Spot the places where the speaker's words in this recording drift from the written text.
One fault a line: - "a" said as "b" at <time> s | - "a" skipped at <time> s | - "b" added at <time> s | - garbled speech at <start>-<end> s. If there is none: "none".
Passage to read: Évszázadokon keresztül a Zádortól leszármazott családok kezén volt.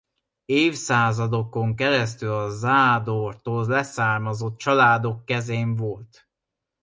none